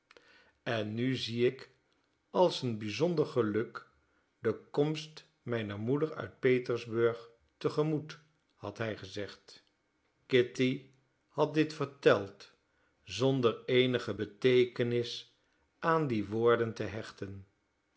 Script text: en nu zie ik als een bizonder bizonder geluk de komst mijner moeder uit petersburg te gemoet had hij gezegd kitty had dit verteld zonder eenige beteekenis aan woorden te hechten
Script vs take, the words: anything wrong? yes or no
yes